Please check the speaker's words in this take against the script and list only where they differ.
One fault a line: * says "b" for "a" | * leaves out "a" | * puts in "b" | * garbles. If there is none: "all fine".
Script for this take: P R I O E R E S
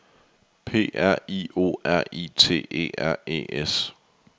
* puts in "R I T"